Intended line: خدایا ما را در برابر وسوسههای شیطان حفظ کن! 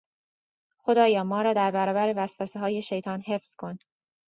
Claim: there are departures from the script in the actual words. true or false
false